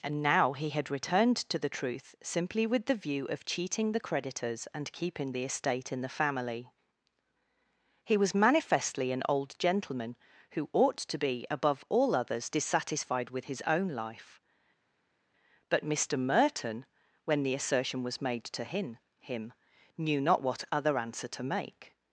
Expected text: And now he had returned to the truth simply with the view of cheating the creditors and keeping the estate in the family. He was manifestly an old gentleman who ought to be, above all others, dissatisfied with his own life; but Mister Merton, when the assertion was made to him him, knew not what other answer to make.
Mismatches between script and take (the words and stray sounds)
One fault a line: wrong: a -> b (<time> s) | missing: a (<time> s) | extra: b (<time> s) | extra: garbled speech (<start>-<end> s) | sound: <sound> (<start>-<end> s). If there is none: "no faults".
no faults